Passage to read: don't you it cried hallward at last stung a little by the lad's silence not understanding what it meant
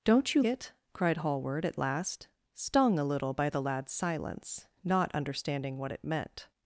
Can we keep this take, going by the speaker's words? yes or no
yes